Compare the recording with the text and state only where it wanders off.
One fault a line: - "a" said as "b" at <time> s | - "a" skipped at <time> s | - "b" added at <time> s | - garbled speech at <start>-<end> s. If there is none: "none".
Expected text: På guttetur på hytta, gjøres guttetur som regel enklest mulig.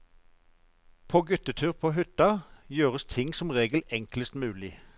- "guttetur" said as "ting" at 3.0 s